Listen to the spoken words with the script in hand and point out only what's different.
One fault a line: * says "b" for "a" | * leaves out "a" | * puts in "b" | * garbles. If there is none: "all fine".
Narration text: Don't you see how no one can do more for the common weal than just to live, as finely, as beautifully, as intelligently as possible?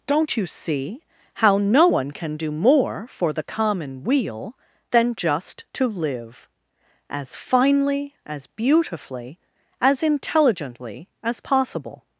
all fine